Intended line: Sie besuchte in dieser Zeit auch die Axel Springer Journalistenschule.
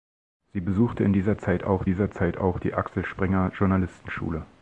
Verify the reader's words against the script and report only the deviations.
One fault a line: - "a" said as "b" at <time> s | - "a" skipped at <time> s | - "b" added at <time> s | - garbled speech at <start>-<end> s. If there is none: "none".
- "dieser Zeit auch" added at 1.8 s